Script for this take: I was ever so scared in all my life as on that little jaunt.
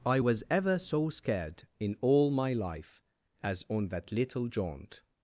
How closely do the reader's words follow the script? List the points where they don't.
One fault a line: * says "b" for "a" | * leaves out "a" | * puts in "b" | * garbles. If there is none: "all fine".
all fine